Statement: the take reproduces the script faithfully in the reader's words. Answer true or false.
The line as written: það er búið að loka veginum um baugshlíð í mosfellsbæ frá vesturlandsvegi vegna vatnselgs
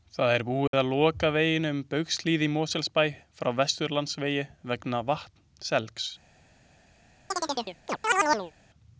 true